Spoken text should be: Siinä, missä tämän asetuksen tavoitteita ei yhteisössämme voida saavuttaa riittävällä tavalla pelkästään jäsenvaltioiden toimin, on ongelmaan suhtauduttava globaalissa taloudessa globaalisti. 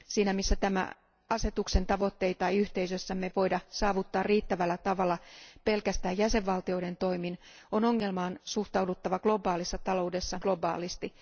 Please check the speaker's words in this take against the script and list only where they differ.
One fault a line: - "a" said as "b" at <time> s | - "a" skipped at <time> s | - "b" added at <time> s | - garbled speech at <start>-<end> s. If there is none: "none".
none